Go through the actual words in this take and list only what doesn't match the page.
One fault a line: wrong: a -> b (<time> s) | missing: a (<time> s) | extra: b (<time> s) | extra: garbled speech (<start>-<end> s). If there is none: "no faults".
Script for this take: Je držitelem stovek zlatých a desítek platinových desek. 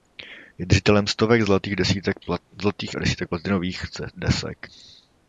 no faults